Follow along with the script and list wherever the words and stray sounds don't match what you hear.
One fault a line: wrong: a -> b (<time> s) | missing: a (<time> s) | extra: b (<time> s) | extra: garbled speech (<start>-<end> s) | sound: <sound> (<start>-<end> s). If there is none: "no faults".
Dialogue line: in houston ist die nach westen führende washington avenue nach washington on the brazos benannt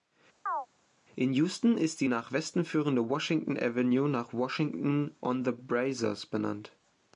sound: chirp (0.5-0.7 s)